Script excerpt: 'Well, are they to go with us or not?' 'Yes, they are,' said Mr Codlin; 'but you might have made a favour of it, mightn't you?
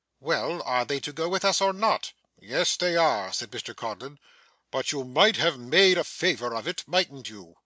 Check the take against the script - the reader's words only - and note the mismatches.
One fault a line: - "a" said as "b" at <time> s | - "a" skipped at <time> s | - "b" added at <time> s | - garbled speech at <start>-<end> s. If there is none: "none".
none